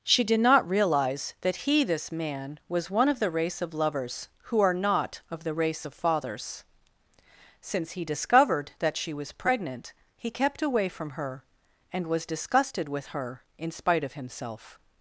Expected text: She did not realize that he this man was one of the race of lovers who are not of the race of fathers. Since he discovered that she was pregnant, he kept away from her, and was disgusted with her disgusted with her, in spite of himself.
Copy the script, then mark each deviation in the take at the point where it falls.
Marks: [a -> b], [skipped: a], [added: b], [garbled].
She did not realize that he this man was one of the race of lovers who are not of the race of fathers. Since he discovered that she was pregnant, he kept away from her, and was disgusted with her [skipped: disgusted with her,] in spite of himself.